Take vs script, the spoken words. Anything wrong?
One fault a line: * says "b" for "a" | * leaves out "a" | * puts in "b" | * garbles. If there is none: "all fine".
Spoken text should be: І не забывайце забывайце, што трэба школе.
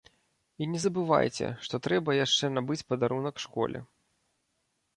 * leaves out "забывайце"
* puts in "яшчэ набыць падарунак"